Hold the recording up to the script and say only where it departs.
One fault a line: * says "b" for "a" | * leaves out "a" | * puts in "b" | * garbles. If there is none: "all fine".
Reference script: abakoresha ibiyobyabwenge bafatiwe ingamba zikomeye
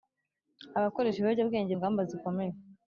* leaves out "bafatiwe"